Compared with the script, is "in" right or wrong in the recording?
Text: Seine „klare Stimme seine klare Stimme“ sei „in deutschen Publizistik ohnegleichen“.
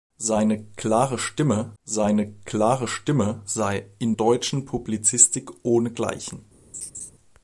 right